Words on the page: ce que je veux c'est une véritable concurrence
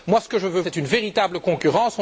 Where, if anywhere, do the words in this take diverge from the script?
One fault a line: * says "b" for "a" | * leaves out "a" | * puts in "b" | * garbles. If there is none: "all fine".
all fine